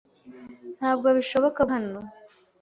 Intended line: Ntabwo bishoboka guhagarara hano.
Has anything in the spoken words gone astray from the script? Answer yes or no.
yes